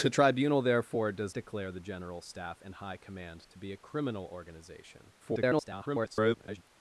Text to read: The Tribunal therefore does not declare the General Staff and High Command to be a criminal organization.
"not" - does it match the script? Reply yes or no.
no